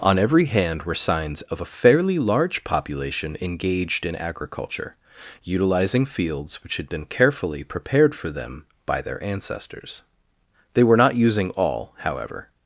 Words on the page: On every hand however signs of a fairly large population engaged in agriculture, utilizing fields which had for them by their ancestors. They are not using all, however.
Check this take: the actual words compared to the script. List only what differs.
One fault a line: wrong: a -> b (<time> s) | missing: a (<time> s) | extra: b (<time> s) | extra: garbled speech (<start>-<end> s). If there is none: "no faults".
wrong: however -> were (0.8 s)
extra: been carefully prepared (6.9 s)
wrong: are -> were (10.8 s)